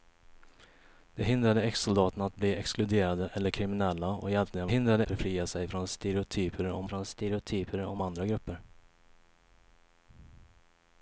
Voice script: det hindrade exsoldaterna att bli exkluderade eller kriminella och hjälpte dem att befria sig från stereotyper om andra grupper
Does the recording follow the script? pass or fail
fail